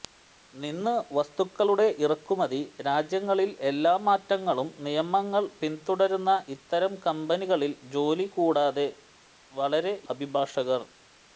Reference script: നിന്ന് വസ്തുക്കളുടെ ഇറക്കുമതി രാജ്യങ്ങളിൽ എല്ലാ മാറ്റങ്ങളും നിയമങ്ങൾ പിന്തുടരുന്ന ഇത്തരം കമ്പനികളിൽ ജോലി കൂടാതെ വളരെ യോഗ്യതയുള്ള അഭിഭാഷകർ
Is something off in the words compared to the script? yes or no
yes